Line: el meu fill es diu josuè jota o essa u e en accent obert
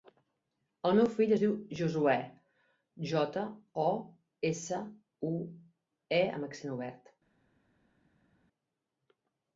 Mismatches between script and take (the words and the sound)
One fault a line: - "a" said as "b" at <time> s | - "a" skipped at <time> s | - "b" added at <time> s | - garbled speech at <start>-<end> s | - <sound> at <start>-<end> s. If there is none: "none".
- "en" said as "amb" at 6.4 s